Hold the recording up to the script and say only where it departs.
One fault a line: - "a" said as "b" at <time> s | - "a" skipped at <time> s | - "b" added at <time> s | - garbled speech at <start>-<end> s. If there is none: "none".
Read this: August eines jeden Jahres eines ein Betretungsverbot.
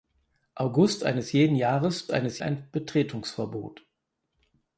none